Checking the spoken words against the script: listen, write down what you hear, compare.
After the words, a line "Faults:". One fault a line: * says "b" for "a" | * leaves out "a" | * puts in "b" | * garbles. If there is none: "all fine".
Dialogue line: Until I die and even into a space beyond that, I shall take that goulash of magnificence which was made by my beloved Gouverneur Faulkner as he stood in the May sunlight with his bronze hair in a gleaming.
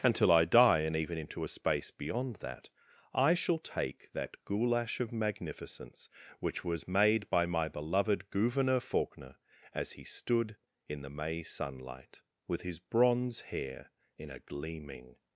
Until I die and even into a space beyond that, I shall take that goulash of magnificence which was made by my beloved Gouverneur Faulkner as he stood in the May sunlight with his bronze hair in a gleaming.
Faults:
all fine